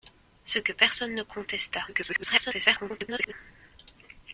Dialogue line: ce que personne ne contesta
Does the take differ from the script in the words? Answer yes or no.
yes